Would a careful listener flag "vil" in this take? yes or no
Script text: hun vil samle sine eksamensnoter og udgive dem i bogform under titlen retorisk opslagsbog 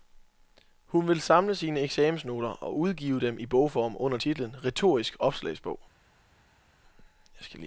no